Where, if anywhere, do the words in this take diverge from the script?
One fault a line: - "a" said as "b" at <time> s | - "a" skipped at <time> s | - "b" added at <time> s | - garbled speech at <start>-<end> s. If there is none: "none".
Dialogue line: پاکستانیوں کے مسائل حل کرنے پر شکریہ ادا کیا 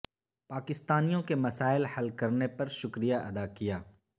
none